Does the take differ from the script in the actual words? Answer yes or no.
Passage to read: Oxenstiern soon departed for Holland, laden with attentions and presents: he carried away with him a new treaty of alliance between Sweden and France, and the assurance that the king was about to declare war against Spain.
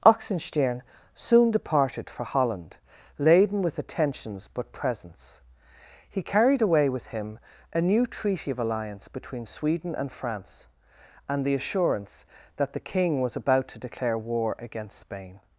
yes